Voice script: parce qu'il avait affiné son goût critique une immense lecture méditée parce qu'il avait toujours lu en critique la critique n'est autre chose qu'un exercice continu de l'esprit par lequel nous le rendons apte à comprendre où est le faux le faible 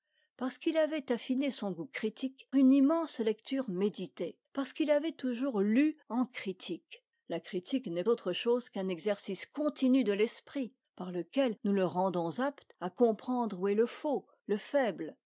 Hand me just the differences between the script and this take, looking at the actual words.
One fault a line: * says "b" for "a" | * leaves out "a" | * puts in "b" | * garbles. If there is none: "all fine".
all fine